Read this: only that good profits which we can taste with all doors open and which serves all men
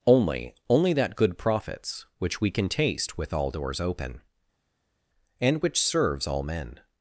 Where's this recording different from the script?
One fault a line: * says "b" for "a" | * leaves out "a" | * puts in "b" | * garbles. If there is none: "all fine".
* puts in "only"